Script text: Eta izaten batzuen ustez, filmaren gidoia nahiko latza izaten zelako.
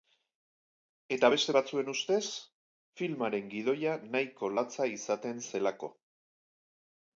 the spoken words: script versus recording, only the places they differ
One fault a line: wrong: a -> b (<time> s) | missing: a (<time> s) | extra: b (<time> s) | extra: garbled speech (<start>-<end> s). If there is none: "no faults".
wrong: izaten -> beste (1.3 s)